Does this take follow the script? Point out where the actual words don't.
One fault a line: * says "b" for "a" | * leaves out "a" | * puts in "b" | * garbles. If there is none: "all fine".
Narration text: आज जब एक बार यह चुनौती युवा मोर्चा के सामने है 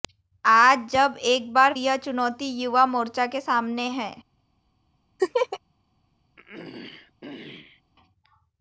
all fine